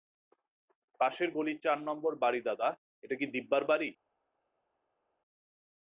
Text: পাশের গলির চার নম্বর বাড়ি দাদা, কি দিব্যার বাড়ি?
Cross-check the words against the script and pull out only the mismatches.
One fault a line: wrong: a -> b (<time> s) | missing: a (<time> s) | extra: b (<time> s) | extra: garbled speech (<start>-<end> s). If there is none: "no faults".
extra: এটা (3.0 s)